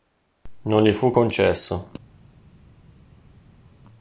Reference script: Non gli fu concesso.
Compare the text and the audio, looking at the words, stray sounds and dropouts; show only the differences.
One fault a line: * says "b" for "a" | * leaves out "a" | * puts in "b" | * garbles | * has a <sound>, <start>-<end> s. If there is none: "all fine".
all fine